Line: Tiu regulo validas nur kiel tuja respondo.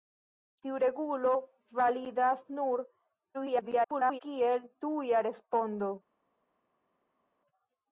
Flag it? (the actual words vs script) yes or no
yes